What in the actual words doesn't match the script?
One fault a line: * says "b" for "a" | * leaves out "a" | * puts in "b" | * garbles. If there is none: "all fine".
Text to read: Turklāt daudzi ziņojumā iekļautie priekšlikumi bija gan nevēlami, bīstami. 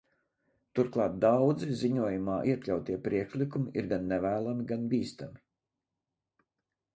* says "ir" for "bija"
* puts in "gan"